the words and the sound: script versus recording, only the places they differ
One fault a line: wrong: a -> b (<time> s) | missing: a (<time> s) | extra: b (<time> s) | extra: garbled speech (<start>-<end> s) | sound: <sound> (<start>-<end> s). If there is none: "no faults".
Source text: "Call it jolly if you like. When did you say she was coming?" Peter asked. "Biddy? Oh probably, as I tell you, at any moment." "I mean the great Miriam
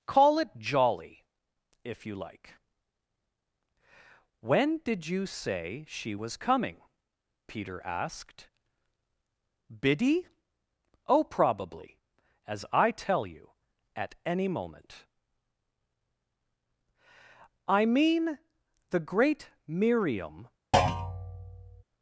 sound: thud (20.7-21.8 s)